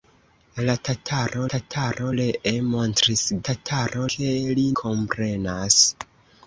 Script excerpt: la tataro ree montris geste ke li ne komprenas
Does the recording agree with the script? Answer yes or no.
no